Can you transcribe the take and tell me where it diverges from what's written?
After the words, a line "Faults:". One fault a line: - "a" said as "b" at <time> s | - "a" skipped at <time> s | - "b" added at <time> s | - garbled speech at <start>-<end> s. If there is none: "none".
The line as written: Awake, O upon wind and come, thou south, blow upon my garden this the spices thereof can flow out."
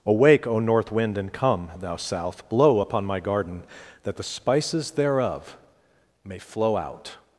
Awake, O north wind and come, thou south, blow upon my garden that the spices thereof may flow out."
Faults:
- "upon" said as "north" at 0.6 s
- "this" said as "that" at 4.0 s
- "can" said as "may" at 6.2 s